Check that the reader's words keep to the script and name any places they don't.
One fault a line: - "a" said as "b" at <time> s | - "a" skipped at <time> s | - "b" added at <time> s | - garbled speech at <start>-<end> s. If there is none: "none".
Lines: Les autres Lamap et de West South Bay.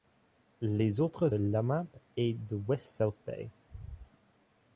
none